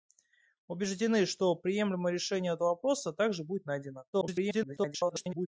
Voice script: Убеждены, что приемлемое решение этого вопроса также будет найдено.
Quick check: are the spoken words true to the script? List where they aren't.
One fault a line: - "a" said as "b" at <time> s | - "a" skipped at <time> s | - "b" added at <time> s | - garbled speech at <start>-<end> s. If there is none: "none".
- garbled speech at 4.1-5.5 s